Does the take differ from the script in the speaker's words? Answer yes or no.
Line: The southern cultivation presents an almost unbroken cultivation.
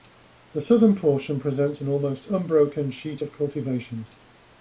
yes